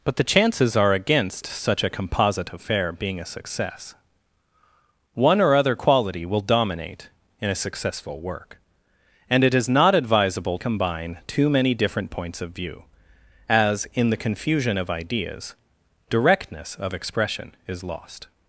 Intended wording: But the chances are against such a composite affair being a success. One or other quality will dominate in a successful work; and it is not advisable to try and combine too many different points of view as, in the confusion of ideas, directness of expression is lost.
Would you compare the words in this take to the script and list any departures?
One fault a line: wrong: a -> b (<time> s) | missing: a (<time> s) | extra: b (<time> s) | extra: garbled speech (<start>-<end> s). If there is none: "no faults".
missing: to try and (10.6 s)